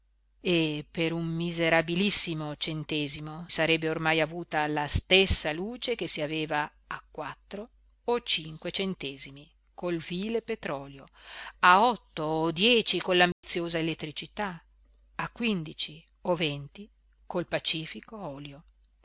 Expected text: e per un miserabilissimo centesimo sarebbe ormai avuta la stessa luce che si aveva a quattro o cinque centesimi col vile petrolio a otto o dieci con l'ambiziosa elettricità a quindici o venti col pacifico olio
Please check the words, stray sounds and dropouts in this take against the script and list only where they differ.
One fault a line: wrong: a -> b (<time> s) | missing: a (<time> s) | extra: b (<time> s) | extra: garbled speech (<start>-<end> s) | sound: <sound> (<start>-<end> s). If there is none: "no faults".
sound: dropout (13.3-13.4 s)